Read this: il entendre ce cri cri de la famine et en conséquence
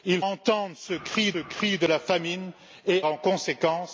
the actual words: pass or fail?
pass